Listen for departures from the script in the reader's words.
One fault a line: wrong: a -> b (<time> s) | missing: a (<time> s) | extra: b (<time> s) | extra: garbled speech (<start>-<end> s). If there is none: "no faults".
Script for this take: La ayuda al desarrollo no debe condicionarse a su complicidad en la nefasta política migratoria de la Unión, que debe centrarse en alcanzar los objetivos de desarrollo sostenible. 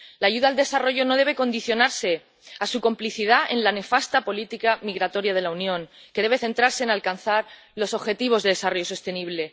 no faults